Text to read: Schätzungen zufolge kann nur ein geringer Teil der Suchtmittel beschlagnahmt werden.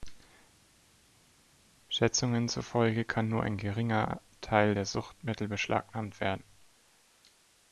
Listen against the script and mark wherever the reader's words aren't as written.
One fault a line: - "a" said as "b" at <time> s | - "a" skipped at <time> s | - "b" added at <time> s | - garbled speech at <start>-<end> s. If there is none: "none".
none